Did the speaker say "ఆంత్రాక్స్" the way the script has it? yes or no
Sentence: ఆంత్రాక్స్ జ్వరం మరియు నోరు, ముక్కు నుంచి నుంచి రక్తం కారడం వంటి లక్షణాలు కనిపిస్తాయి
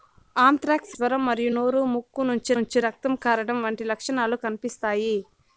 yes